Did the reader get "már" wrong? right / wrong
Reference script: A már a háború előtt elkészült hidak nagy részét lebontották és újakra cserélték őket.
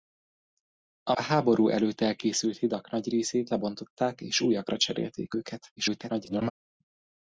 wrong